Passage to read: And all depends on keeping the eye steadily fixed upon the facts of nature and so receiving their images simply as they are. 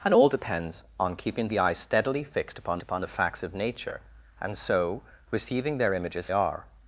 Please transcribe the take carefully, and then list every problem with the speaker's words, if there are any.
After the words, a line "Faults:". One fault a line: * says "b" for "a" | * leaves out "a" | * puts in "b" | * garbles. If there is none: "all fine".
And all depends on keeping the eye steadily fixed upon upon the facts of nature and so receiving their images are.
Faults:
* puts in "upon"
* leaves out "simply as they"